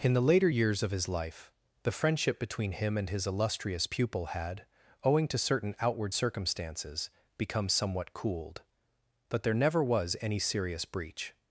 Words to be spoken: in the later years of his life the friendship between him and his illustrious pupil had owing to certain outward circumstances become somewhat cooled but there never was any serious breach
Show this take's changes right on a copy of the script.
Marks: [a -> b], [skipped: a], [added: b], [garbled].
in the later years of his life the friendship between him and his illustrious pupil had owing to certain outward circumstances become somewhat cooled but there never was any serious breach